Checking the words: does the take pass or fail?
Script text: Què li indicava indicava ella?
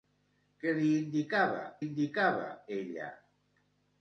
pass